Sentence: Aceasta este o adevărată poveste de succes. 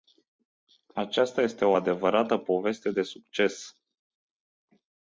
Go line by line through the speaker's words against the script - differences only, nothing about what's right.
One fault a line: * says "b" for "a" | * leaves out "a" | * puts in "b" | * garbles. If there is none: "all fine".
all fine